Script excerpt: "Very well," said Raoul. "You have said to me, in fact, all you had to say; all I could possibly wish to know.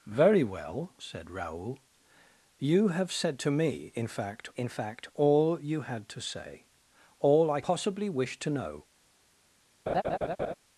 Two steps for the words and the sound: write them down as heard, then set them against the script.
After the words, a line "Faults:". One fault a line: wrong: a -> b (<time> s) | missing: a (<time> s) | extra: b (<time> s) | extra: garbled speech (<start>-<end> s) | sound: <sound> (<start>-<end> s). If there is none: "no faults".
"Very well," said Raoul. "You have said to me, in fact in fact, all you had to say; all I possibly wish to know.
Faults:
extra: in fact (4.5 s)
missing: could (7.6 s)
sound: laugh (9.9-10.5 s)